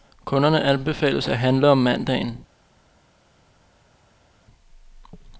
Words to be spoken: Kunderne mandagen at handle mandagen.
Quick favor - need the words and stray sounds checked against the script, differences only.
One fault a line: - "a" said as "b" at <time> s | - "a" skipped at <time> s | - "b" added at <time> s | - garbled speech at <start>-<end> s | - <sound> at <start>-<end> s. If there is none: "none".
- "mandagen" said as "anbefales" at 0.6 s
- "om" added at 1.7 s